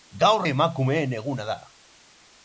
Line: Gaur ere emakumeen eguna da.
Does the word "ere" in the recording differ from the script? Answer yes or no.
yes